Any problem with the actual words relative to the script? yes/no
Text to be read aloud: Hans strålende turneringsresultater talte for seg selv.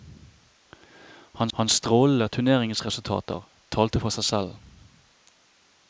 yes